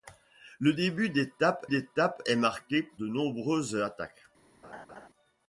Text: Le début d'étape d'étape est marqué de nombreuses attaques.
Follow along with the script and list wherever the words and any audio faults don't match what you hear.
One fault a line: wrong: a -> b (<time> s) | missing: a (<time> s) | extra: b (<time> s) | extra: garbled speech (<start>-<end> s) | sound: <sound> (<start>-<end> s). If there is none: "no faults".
sound: laugh (4.6-5.1 s)